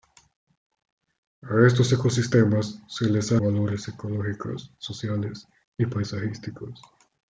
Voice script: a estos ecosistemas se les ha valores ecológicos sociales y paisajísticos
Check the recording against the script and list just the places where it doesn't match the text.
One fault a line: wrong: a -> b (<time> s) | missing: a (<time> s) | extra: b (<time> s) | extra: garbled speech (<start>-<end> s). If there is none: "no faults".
no faults